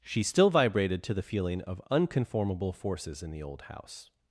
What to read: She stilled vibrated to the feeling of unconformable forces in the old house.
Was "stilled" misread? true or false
true